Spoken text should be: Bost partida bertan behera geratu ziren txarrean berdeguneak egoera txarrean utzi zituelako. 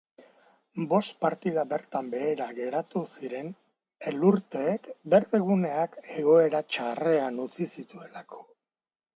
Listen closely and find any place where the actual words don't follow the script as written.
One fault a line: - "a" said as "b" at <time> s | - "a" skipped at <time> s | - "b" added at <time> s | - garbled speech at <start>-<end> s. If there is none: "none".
- "txarrean" said as "elurteek" at 4.1 s